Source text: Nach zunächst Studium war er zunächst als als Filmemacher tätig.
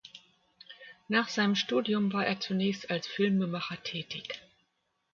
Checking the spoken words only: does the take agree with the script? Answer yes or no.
no